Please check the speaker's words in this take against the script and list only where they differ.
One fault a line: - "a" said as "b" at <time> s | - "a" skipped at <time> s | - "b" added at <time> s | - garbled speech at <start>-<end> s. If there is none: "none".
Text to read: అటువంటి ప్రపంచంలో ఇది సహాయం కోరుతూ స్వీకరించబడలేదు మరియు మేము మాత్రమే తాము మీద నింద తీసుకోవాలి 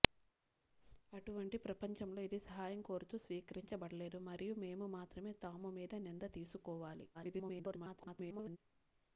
- garbled speech at 7.1-8.6 s